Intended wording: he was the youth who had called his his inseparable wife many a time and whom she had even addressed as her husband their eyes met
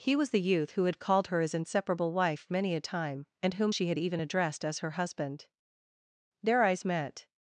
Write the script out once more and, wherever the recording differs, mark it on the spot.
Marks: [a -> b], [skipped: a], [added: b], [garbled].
he was the youth who had called [his -> her] his inseparable wife many a time and whom she had even addressed as her husband their eyes met